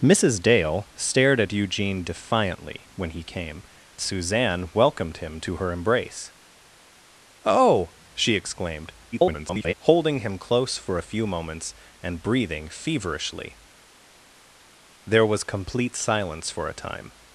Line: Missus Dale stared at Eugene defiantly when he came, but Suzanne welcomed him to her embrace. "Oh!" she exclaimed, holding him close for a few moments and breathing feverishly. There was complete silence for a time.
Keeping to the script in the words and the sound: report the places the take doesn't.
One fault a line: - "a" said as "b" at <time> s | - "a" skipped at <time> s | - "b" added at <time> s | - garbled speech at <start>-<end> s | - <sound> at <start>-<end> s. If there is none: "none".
- "but" skipped at 3.6 s
- garbled speech at 9.1-9.7 s